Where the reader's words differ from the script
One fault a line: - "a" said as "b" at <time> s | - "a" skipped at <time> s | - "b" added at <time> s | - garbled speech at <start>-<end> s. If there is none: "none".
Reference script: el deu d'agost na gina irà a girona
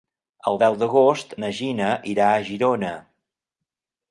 none